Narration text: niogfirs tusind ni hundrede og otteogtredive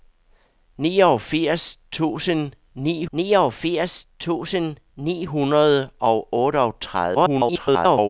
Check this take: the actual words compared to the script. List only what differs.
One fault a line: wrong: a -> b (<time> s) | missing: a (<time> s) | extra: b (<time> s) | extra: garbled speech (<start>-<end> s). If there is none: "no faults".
extra: niogfirs tusind ni (3.1 s)
extra: garbled speech (7.1-8.1 s)